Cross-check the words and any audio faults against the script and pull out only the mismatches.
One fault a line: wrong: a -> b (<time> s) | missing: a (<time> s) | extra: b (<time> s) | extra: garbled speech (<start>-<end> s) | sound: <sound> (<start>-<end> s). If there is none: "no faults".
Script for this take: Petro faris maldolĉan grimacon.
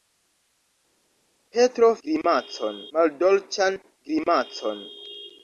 wrong: faris -> grimacon (2.1 s)